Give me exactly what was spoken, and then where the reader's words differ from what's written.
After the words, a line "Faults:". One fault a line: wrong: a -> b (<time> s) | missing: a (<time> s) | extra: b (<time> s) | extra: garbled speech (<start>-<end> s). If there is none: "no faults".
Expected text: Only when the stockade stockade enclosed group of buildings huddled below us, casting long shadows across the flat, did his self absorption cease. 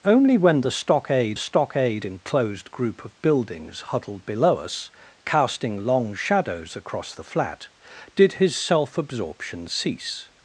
Only when the stockade stockade enclosed group of buildings huddled below us, casting long shadows across the flat, did his self absorption cease.
Faults:
no faults